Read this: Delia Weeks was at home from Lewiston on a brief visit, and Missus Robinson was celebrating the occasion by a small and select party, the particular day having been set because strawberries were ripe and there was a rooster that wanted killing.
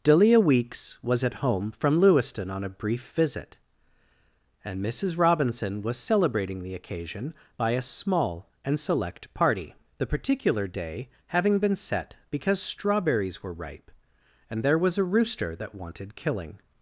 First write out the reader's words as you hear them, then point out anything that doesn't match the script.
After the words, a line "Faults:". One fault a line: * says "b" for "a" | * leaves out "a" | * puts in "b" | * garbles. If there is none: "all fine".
Delia Weeks was at home from Lewiston on a brief visit, and Missus Robinson was celebrating the occasion by a small and select party, the particular day having been set because strawberries were ripe and there was a rooster that wanted killing.
Faults:
all fine